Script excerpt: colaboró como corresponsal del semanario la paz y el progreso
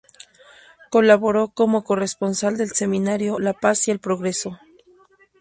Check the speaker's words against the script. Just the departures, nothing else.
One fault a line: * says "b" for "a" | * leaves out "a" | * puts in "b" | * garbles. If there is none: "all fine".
all fine